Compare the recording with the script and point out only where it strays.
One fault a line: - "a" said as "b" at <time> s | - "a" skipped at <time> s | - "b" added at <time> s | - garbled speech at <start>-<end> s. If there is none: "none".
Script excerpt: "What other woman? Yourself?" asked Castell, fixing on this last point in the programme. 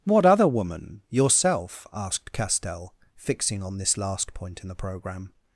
none